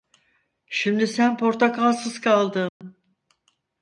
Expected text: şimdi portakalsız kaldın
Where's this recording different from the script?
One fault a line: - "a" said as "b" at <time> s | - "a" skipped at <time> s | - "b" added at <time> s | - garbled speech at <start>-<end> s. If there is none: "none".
- "sen" added at 1.1 s